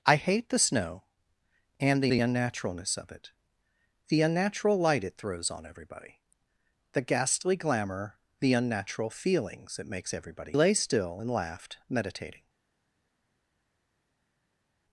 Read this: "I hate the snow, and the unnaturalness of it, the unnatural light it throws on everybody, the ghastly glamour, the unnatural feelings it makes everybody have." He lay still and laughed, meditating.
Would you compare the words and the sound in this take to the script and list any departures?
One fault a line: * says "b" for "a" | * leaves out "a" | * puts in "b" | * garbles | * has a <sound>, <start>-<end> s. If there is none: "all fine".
* puts in "the"
* leaves out "have He"